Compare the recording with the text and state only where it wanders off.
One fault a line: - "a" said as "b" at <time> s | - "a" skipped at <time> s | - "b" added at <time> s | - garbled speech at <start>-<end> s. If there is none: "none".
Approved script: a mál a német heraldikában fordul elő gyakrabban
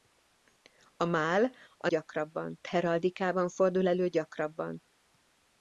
- "német" said as "gyakrabban" at 1.9 s